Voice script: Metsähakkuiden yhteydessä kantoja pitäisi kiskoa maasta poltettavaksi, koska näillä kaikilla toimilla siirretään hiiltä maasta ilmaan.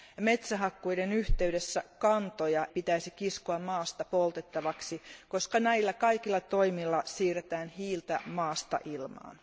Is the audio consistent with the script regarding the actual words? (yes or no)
yes